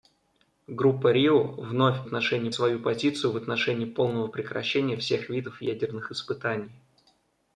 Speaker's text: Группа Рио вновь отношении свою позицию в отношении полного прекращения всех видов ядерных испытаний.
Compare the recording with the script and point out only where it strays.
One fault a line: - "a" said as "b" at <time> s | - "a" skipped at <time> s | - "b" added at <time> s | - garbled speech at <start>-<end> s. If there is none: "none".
none